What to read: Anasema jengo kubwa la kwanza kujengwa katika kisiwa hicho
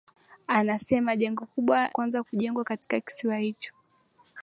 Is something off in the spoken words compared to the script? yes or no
yes